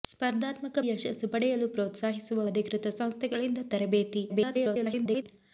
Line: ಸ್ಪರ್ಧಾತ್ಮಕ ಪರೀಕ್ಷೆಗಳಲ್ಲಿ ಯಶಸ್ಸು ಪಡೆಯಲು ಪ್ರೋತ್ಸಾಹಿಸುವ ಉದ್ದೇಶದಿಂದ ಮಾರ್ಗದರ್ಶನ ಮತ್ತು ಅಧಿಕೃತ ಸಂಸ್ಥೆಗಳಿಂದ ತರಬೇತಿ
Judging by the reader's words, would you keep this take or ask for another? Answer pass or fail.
fail